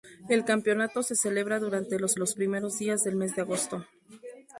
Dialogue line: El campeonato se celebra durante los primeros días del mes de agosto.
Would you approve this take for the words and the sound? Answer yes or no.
no